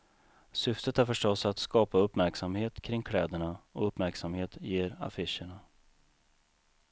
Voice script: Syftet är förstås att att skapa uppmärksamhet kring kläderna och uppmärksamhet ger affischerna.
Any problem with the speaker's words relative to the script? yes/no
yes